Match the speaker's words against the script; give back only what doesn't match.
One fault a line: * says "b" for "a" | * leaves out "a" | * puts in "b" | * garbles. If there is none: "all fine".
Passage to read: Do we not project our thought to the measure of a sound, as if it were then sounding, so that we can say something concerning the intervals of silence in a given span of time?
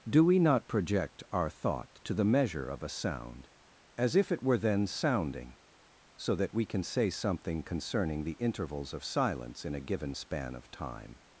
all fine